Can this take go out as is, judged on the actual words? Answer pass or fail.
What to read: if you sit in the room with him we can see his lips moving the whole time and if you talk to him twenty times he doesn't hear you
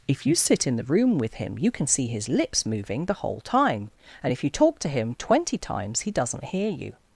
fail